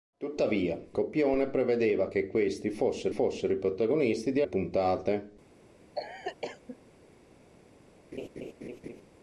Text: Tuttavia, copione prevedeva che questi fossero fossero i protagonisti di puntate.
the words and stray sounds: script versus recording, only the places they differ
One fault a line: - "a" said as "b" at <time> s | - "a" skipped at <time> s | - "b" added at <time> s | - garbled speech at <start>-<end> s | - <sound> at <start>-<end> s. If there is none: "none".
- cough at 5.9-6.8 s
- laugh at 8.1-9.0 s